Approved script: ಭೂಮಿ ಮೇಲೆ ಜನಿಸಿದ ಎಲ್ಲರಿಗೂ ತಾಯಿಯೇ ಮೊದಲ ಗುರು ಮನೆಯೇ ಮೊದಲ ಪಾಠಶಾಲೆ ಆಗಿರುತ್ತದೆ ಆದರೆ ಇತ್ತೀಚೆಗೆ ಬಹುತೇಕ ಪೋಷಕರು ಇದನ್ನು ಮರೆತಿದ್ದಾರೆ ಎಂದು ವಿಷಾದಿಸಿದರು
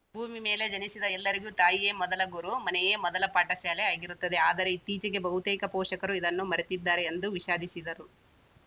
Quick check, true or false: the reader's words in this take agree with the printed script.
true